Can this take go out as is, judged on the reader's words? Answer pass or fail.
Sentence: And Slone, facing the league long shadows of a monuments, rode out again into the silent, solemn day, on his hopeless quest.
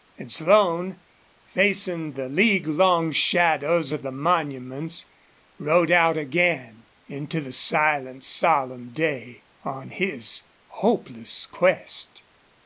fail